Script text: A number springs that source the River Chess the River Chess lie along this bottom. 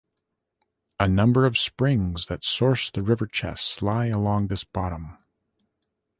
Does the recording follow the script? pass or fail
fail